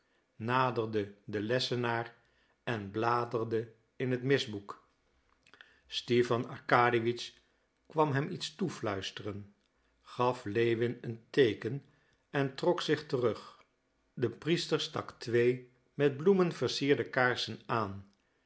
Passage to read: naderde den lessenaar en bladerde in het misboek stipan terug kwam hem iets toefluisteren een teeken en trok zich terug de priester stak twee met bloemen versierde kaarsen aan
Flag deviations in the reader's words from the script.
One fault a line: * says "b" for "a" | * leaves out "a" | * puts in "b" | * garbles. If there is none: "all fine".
* says "arkadiewitsch" for "terug"
* puts in "gaf lewin"